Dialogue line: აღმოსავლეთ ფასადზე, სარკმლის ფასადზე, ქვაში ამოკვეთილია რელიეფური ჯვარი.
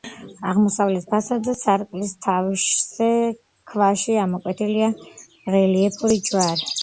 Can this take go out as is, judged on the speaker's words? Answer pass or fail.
fail